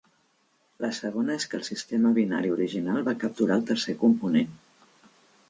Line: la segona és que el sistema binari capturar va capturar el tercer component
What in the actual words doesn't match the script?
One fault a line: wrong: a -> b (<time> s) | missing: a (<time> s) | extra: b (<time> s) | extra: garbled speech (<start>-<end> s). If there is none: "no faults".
wrong: capturar -> original (2.5 s)